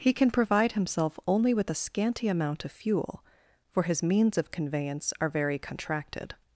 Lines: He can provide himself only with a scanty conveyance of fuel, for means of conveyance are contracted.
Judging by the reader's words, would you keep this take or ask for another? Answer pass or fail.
fail